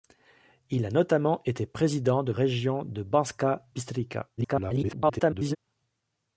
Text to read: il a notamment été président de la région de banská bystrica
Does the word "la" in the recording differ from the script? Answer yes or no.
yes